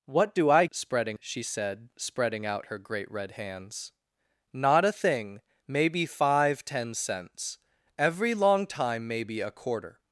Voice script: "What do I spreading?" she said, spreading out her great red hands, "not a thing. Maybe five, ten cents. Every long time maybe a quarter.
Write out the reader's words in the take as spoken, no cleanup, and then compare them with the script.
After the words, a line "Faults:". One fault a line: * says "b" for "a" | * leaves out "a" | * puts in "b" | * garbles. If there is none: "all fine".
"What do I spreading?" she said, spreading out her great red hands, "not a thing. Maybe five, ten cents. Every long time maybe a quarter.
Faults:
all fine